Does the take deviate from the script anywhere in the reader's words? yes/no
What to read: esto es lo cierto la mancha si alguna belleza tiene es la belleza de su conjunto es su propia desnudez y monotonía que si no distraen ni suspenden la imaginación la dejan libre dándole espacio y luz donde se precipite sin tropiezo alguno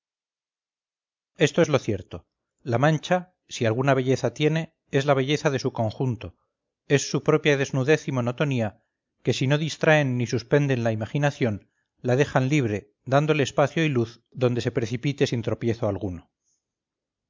no